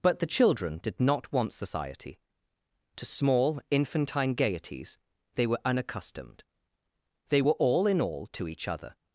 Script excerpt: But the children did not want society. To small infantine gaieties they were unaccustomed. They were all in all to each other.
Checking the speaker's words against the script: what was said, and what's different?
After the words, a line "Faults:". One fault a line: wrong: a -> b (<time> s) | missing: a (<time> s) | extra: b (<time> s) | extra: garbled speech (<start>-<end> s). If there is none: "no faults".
But the children did not want society. To small infantine gaieties they were unaccustomed. They were all in all to each other.
Faults:
no faults